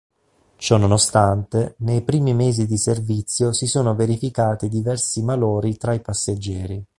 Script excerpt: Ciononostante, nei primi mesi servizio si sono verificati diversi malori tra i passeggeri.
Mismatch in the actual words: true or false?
true